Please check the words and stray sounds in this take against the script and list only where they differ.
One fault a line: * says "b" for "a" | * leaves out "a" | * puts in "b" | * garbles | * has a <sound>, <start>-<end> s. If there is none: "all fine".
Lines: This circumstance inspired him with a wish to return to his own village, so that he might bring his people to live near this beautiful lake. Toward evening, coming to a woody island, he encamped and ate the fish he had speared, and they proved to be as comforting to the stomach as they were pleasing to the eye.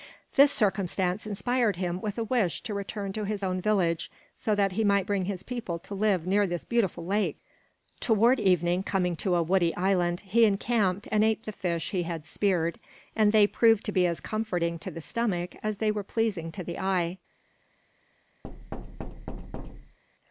* has a thud, 18.4-20.0 s